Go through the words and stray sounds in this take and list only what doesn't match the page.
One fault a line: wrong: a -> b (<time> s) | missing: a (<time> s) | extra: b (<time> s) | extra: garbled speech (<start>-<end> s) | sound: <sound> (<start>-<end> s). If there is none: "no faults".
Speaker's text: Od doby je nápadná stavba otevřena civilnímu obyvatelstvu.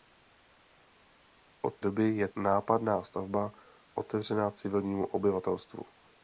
no faults